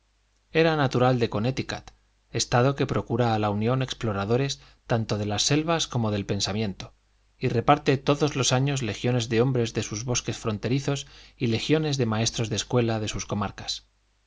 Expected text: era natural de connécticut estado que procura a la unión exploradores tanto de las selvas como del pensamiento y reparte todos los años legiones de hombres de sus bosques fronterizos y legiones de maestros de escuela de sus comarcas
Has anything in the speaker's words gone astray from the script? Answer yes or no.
no